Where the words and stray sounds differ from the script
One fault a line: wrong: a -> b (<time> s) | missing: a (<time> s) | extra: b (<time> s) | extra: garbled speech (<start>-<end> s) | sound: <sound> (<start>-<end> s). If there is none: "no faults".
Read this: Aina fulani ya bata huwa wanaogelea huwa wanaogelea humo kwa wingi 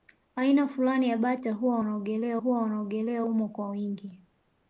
no faults